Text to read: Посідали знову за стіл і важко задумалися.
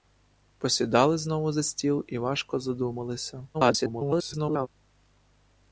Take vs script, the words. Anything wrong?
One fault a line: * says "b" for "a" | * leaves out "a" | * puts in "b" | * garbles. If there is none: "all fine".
* garbles